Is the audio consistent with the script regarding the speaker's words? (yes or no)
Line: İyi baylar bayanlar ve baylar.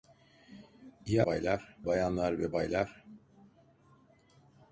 yes